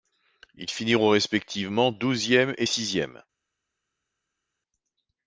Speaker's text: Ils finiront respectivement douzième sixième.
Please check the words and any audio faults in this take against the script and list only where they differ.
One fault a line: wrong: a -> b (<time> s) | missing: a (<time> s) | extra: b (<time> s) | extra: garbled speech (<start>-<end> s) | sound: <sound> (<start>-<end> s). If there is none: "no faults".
extra: et (2.6 s)